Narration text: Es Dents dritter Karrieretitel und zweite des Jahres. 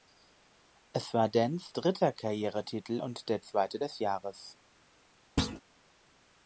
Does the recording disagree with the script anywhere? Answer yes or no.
yes